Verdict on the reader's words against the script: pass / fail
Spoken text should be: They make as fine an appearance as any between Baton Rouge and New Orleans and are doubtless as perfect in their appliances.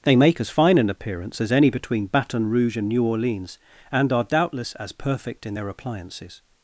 pass